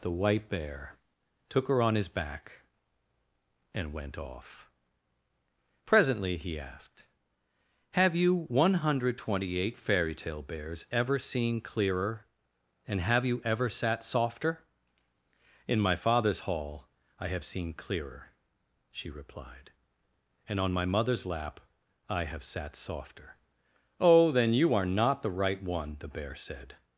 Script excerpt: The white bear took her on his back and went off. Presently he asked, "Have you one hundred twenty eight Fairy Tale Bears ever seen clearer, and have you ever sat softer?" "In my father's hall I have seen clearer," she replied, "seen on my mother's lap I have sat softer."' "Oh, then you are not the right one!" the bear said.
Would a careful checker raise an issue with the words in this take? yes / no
yes